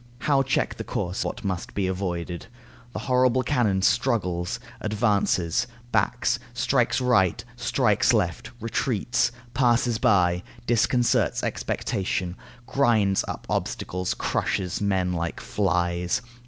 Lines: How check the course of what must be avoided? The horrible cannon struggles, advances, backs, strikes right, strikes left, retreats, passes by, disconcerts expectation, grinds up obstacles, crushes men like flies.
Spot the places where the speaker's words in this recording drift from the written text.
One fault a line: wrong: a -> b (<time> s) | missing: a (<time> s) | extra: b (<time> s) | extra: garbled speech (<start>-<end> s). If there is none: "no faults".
missing: of (1.2 s)